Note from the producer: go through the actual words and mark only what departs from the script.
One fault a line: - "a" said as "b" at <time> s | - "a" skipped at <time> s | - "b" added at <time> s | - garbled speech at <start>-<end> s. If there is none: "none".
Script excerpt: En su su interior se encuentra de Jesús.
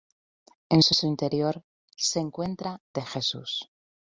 none